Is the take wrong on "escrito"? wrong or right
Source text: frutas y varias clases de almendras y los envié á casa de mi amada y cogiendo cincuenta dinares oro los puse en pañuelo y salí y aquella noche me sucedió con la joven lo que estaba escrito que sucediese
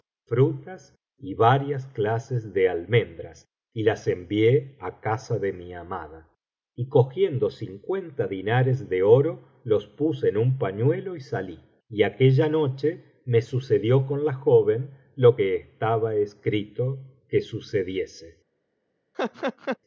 right